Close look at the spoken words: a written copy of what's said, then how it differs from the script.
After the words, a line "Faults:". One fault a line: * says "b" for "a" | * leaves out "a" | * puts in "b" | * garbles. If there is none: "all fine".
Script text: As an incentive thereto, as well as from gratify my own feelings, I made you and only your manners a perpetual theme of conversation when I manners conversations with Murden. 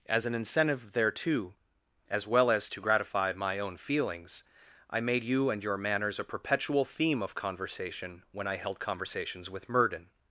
As an incentive thereto, as well as to gratify my own feelings, I made you and your manners a perpetual theme of conversation when I held conversations with Murden.
Faults:
* says "to" for "from"
* leaves out "only"
* says "held" for "manners"